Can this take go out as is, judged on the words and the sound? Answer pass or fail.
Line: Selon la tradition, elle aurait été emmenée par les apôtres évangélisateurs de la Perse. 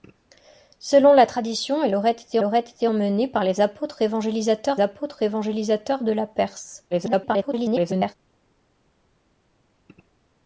fail